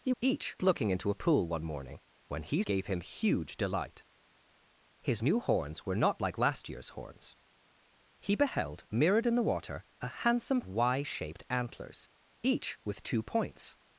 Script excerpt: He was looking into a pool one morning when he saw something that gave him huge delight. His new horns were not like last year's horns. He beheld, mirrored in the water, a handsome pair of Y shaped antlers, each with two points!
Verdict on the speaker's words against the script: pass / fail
fail